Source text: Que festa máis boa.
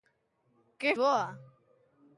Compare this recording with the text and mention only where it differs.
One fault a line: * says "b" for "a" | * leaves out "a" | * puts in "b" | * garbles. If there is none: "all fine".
* leaves out "festa máis"